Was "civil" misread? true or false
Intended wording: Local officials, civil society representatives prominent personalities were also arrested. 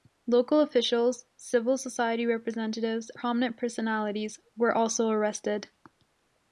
false